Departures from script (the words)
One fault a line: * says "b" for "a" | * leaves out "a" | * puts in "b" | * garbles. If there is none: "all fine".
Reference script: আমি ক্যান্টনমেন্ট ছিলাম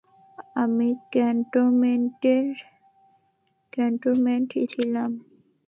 all fine